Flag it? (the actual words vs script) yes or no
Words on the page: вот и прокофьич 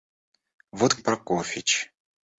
no